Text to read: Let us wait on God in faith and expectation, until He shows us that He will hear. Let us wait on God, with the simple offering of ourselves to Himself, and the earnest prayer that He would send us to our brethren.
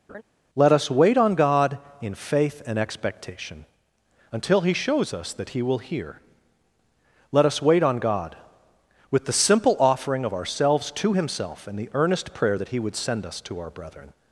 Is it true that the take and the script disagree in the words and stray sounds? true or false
true